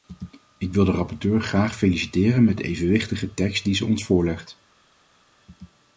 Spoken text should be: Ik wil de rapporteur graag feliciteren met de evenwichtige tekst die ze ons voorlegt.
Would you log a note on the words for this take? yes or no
no